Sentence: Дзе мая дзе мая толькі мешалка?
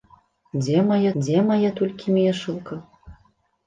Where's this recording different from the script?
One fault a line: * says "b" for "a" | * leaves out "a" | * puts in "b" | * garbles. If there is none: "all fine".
all fine